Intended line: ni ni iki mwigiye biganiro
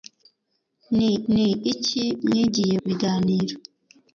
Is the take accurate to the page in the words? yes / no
yes